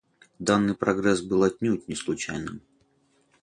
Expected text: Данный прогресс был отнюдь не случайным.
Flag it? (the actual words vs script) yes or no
no